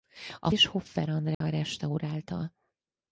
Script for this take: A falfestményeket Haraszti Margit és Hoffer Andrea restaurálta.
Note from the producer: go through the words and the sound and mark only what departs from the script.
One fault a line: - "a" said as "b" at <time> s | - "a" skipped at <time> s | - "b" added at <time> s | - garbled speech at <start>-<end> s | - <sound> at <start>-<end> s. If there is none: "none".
- "falfestményeket Haraszti Margit" skipped at 0.5 s
- dropout at 1.3-1.4 s